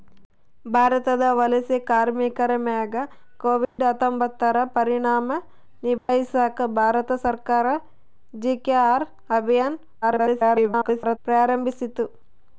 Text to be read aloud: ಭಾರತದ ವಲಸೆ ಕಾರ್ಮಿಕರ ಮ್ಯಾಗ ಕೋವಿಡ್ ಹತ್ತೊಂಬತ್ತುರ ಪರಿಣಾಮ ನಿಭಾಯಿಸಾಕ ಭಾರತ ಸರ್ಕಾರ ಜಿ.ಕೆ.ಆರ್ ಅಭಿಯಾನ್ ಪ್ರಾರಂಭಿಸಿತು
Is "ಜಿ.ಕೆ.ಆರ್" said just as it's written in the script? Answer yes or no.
yes